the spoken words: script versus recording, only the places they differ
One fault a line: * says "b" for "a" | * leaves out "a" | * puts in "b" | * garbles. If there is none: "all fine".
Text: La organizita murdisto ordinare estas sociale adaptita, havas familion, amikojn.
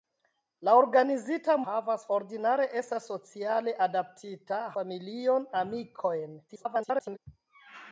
* says "havas" for "murdisto"
* leaves out "havas"
* garbles